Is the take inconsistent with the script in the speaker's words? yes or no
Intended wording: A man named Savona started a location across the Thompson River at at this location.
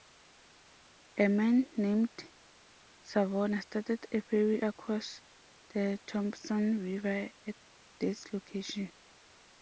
yes